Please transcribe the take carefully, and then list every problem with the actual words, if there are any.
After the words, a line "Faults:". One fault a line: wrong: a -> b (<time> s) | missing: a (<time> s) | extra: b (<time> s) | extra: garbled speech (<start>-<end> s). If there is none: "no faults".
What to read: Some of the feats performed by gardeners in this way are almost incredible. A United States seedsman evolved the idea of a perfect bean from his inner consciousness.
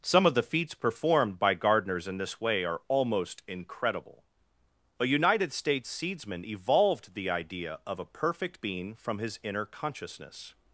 Some of the feats performed by gardeners in this way are almost incredible. A United States seedsman evolved the idea of a perfect bean from his inner consciousness.
Faults:
no faults